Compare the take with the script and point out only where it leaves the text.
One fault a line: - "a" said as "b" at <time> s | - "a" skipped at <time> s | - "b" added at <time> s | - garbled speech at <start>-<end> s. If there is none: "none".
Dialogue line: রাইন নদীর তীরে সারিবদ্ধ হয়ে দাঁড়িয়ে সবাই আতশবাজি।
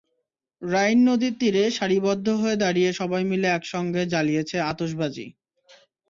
- "মিলে একসঙ্গে জ্বালিয়েছে" added at 3.3 s